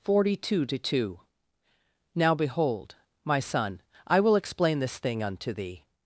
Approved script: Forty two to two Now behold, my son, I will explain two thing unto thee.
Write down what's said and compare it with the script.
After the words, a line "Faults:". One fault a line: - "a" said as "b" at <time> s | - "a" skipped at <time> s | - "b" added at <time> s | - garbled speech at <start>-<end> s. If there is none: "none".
Forty two to two Now behold, my son, I will explain this thing unto thee.
Faults:
- "two" said as "this" at 4.8 s